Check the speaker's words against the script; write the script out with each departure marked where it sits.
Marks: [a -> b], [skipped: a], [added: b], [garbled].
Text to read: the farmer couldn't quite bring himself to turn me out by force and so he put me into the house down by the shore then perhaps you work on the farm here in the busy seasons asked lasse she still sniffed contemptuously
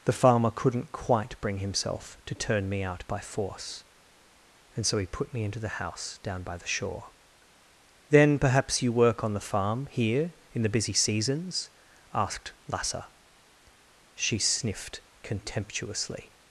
the farmer couldn't quite bring himself to turn me out by force and so he put me into the house down by the shore then perhaps you work on the farm here in the busy seasons asked lasse she [skipped: still] sniffed contemptuously